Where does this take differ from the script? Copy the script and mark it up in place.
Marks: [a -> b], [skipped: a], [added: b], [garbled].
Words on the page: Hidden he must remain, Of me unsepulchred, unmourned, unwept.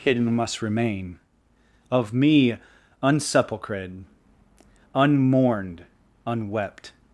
Hidden [skipped: he] must remain, Of me unsepulchred, unmourned, unwept.